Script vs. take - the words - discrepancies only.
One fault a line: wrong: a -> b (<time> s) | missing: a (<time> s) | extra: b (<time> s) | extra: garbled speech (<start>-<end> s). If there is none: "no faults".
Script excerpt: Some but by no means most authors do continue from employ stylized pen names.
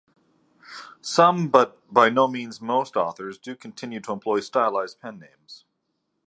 wrong: from -> to (4.0 s)